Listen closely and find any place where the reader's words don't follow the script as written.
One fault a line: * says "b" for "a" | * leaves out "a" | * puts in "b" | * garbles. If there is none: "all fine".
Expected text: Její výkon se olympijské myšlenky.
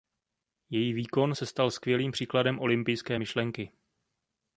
* puts in "stal skvělým příkladem"